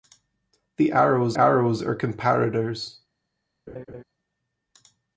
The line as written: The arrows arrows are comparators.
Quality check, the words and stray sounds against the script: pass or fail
fail